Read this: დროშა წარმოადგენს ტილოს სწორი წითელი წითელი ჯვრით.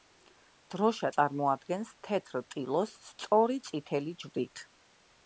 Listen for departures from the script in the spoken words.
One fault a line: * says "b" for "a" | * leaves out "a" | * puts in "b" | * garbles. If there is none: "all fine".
* puts in "თეთრ"
* leaves out "წითელი"